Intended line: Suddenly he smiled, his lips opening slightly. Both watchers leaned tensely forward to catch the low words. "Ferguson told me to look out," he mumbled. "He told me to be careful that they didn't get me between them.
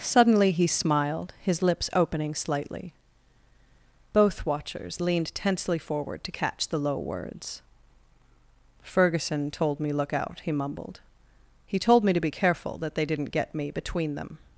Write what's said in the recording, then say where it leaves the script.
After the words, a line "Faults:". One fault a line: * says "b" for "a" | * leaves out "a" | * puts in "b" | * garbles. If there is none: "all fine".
Suddenly he smiled, his lips opening slightly. Both watchers leaned tensely forward to catch the low words. "Ferguson told me look out," he mumbled. "He told me to be careful that they didn't get me between them.
Faults:
* leaves out "to"